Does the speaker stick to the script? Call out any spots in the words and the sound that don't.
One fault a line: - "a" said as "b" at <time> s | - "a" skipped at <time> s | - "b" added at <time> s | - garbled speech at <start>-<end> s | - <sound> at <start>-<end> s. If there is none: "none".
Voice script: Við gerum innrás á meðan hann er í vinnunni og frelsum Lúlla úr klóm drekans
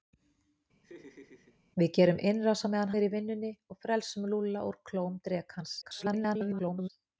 - laugh at 0.8-1.6 s
- "hann" skipped at 2.9 s
- garbled speech at 5.8-6.9 s